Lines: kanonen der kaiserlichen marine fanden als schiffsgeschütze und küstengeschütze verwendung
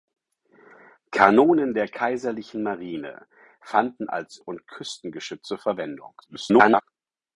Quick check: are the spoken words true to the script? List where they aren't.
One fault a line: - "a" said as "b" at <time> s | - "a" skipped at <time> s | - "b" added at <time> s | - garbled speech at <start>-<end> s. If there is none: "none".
- "schiffsgeschütze" skipped at 4.4 s
- garbled speech at 6.2-6.8 s